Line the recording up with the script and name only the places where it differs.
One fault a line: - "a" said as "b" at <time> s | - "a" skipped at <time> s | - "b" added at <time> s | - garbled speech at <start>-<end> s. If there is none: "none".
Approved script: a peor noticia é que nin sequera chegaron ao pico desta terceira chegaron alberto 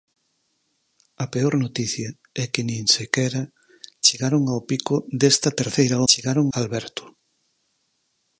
none